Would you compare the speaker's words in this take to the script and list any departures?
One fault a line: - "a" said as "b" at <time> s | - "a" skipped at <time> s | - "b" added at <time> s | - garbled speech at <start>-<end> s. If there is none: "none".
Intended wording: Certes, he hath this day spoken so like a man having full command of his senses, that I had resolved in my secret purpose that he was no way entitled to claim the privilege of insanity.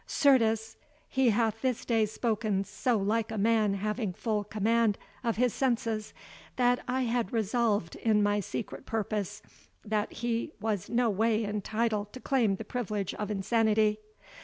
none